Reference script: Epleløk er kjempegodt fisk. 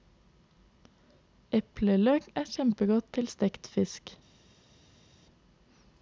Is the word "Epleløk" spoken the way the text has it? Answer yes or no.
yes